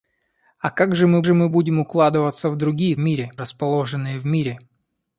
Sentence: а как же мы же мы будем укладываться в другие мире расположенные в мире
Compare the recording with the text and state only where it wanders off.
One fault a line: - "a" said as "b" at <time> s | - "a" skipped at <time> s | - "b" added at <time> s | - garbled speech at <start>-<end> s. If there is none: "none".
none